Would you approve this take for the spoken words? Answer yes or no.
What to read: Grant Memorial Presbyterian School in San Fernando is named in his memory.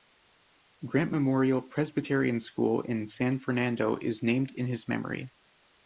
yes